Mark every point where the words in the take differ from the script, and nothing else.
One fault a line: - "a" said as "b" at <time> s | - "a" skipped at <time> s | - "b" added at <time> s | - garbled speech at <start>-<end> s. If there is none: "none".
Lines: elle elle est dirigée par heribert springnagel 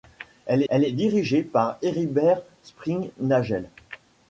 none